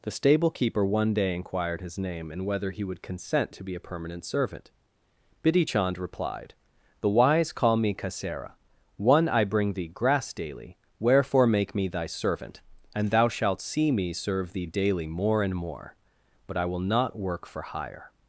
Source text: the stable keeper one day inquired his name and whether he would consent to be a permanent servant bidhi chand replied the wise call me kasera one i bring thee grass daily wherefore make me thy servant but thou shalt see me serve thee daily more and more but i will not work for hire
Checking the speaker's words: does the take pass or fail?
fail